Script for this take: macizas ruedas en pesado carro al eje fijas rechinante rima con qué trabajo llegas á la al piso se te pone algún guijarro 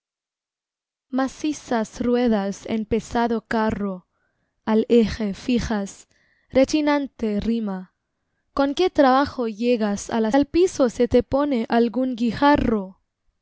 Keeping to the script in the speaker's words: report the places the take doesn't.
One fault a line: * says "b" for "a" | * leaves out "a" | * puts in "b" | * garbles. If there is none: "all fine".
all fine